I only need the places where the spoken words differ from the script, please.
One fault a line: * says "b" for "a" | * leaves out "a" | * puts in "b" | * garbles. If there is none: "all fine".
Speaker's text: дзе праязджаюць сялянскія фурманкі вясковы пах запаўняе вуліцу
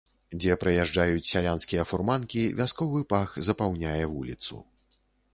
all fine